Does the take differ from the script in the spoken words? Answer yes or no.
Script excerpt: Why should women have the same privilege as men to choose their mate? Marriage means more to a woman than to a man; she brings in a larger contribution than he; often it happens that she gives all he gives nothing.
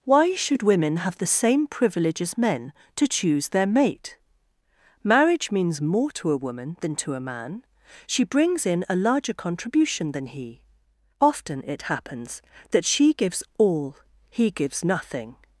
no